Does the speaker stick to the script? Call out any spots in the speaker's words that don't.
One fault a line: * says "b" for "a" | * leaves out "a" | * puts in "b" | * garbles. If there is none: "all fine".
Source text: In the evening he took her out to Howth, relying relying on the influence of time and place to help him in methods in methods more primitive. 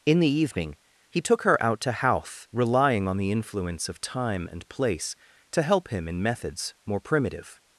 * leaves out "relying"
* leaves out "in methods"